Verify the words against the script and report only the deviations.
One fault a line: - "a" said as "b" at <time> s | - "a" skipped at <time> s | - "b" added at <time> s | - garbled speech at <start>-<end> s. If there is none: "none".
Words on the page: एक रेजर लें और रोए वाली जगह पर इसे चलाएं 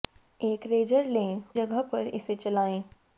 - "और रोए वाली" skipped at 1.4 s